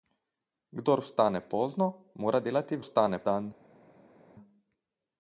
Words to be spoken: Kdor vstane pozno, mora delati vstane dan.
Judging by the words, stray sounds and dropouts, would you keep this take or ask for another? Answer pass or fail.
pass